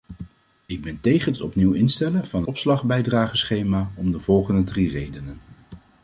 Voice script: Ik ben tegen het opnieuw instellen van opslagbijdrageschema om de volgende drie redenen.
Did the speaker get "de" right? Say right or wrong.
right